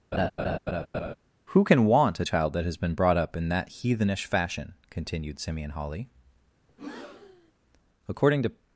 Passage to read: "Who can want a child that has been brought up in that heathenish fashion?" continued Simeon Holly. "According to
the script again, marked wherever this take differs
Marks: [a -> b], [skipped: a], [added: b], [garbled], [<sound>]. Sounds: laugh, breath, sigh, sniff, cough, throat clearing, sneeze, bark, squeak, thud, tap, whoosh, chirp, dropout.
[laugh] "Who can want a child that has been brought up in that heathenish fashion?" continued Simeon Holly. [breath] "According to